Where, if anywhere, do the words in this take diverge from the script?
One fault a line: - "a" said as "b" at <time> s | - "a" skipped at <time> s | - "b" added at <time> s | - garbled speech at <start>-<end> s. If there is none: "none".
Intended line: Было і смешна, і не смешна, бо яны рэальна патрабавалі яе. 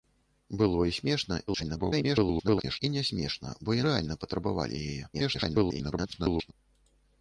- garbled speech at 1.5-2.8 s
- "яны" skipped at 3.8 s
- garbled speech at 5.1-6.5 s